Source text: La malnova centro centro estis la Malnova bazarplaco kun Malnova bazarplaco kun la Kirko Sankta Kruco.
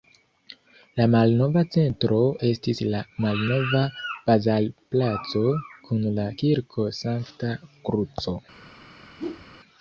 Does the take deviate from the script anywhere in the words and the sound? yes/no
yes